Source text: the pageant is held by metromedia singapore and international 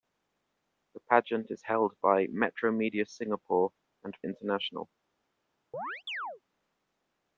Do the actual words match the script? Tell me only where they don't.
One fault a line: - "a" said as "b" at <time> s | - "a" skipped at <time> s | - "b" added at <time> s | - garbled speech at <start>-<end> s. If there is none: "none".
none